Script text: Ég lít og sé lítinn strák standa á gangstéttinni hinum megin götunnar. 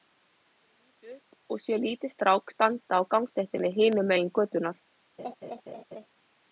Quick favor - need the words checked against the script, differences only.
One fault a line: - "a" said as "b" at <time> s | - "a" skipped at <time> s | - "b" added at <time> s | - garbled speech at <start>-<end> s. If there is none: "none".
- "upp" added at 1.4 s